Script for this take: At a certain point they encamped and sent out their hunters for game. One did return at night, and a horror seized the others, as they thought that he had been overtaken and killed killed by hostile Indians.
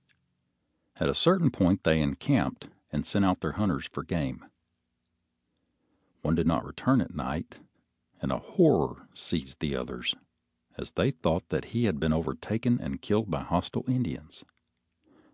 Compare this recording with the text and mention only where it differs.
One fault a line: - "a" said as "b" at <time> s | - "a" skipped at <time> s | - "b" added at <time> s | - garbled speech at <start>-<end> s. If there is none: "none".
- "not" added at 6.5 s
- "killed" skipped at 13.3 s